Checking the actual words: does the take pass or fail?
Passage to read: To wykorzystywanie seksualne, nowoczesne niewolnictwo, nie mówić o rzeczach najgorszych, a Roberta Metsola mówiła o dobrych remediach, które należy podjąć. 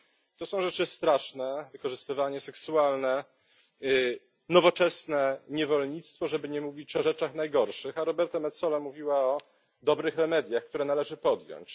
fail